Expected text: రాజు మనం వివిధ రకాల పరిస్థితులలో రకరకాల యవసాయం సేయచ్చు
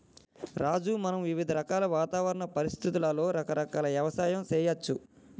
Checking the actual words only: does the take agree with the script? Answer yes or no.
no